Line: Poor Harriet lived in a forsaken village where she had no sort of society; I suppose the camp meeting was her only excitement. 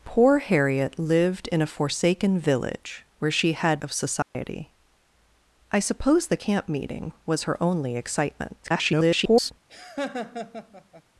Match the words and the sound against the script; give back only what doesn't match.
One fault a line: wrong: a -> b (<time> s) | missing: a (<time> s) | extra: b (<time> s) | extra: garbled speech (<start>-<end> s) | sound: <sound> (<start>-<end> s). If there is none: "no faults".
missing: no sort (3.8 s)
sound: dropout (4.2-4.4 s)
extra: garbled speech (8.6-9.5 s)
sound: laugh (9.7-11.0 s)